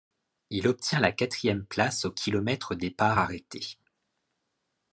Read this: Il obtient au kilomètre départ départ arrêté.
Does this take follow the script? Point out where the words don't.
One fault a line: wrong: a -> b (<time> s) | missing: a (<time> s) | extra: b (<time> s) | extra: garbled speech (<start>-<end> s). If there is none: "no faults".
extra: la quatrième place (1.0 s)
missing: départ (3.2 s)